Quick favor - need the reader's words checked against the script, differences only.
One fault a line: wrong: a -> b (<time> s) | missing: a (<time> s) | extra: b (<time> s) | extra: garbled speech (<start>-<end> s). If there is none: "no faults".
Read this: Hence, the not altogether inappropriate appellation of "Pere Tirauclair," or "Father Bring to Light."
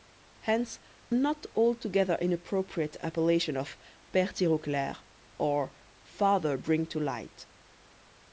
missing: the (0.8 s)